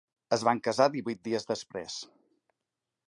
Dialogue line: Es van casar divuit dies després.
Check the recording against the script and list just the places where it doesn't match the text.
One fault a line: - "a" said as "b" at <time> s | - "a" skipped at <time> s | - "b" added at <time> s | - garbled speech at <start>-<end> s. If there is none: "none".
none